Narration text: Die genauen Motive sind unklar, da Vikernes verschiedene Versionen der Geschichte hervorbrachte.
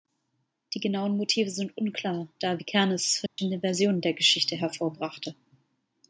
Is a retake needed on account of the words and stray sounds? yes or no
yes